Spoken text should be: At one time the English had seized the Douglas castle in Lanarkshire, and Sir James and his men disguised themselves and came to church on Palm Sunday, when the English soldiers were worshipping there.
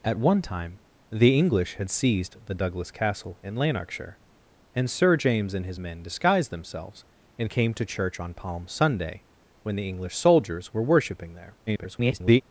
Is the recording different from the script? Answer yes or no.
yes